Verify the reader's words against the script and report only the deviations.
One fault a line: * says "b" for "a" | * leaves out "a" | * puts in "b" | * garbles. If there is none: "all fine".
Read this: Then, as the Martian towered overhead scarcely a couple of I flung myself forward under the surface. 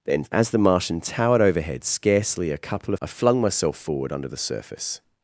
all fine